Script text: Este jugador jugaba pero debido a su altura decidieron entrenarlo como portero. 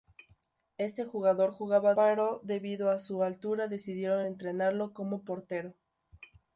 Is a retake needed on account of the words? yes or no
no